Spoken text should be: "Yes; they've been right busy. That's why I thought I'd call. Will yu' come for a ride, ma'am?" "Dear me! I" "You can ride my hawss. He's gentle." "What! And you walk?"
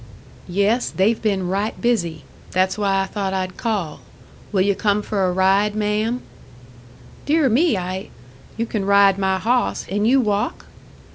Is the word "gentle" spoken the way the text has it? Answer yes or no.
no